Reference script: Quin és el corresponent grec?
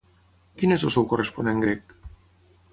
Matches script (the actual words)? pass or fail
fail